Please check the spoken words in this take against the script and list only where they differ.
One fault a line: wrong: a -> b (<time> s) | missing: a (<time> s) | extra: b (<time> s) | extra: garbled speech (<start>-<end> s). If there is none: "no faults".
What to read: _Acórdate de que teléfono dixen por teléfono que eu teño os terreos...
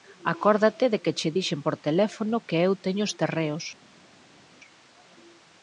wrong: teléfono -> che (1.2 s)